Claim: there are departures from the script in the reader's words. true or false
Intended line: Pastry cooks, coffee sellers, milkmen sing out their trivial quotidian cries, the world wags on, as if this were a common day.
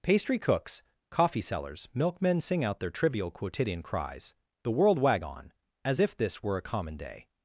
true